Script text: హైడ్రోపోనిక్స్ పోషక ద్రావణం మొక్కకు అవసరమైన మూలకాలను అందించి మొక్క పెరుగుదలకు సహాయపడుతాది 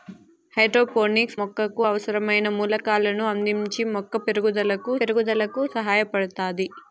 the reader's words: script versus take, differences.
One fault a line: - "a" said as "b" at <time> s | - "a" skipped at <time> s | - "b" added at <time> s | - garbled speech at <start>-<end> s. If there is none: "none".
- "పోషక ద్రావణం" skipped at 1.4 s
- "పెరుగుదలకు" added at 5.0 s